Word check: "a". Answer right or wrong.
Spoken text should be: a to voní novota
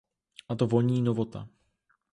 right